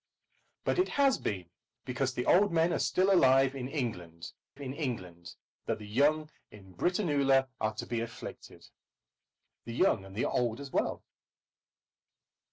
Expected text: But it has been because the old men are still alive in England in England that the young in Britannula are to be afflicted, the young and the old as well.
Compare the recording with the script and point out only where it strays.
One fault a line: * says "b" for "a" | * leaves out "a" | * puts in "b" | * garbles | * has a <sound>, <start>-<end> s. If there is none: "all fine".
all fine